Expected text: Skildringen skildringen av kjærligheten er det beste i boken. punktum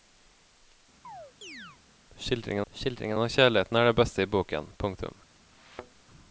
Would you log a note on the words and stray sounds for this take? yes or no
yes